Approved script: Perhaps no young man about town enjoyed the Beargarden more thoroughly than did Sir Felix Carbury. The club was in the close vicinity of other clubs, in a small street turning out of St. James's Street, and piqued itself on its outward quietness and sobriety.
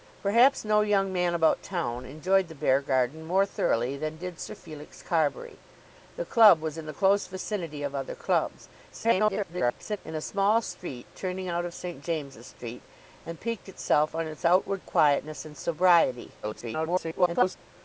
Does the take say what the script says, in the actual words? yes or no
no